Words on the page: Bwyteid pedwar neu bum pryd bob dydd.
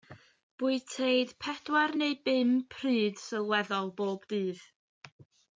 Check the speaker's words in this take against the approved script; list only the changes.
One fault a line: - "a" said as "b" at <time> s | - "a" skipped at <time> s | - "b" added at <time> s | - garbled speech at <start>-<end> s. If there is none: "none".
- "sylweddol" added at 3.3 s